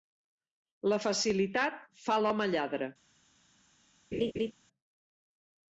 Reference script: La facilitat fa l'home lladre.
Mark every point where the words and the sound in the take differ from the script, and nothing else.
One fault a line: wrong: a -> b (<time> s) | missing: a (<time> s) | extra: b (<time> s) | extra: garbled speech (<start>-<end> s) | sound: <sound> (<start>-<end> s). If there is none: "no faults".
sound: laugh (4.1-4.5 s)